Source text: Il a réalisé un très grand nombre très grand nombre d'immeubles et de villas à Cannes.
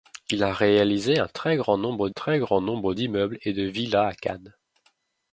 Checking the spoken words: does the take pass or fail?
pass